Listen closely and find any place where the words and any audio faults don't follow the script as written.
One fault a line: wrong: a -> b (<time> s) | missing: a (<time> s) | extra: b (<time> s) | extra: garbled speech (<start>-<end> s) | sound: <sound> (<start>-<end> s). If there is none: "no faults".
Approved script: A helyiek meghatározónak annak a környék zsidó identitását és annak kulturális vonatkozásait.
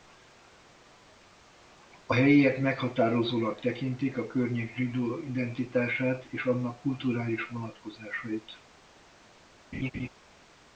wrong: annak -> tekintik (3.6 s)
sound: laugh (9.7-10.1 s)